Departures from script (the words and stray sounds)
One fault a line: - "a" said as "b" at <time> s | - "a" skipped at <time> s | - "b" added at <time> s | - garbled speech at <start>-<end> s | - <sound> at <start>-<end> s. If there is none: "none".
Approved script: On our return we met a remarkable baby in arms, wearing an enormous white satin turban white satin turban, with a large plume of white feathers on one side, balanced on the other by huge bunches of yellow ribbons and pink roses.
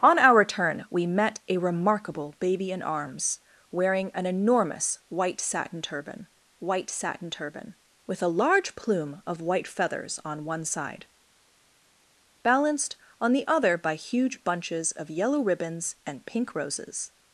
none